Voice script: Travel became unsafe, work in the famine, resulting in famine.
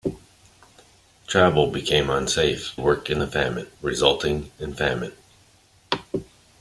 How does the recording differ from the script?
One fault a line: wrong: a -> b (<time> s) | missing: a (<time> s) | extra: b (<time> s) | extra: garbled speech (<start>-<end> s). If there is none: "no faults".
no faults